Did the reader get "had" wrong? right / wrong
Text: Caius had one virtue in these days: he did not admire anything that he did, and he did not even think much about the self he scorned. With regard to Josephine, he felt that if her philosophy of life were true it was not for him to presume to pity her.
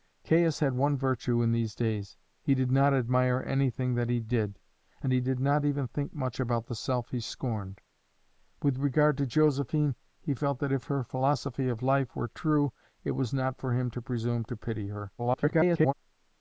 right